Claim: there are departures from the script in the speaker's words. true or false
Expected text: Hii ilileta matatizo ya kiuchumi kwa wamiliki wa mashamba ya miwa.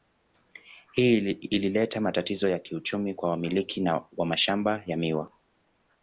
false